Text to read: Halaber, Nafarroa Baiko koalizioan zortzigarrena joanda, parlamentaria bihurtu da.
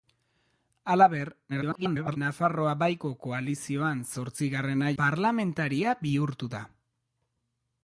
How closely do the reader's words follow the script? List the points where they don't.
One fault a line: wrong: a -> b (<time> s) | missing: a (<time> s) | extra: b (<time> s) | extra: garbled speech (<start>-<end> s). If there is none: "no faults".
extra: garbled speech (1.5-2.2 s)
missing: joanda (4.9 s)